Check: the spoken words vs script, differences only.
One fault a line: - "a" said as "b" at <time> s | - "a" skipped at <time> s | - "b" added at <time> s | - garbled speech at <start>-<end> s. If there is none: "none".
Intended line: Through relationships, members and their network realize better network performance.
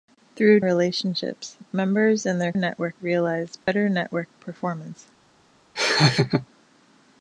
none